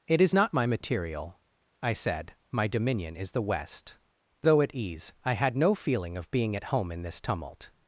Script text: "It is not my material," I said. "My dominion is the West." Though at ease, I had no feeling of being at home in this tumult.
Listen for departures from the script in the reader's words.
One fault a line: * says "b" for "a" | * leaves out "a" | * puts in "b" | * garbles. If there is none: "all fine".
all fine